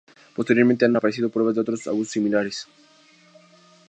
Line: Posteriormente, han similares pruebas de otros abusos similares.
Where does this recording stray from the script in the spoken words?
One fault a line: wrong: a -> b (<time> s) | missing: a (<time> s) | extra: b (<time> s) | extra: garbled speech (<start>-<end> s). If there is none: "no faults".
wrong: similares -> aparecido (0.9 s)